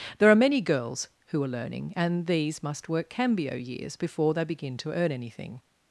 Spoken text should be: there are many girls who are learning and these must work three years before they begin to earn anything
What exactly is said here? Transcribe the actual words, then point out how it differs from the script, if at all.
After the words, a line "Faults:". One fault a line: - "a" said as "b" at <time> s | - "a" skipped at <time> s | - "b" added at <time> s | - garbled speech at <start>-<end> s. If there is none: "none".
there are many girls who are learning and these must work cambio years before they begin to earn anything
Faults:
- "three" said as "cambio" at 3.1 s